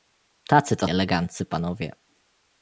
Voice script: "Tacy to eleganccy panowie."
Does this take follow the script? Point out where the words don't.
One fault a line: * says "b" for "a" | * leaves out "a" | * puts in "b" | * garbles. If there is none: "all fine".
all fine